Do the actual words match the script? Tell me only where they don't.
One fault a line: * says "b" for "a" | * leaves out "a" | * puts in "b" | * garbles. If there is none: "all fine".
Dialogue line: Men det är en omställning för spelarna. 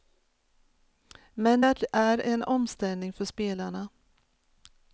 all fine